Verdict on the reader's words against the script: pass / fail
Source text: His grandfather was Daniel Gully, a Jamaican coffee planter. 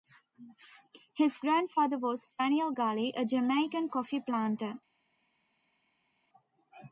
pass